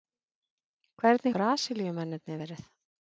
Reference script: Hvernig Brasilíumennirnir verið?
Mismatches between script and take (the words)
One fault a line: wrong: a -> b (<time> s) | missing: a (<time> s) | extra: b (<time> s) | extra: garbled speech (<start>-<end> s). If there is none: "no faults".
no faults